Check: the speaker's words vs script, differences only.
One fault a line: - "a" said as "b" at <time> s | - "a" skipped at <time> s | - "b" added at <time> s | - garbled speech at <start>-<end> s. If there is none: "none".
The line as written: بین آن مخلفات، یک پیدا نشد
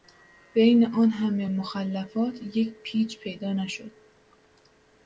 - "همه" added at 1.1 s
- "پیچ" added at 2.8 s